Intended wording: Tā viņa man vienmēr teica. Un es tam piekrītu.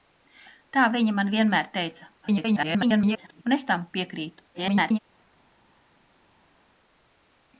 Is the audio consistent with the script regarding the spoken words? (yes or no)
no